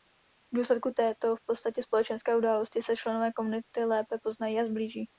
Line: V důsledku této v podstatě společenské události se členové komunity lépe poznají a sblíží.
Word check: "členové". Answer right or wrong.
right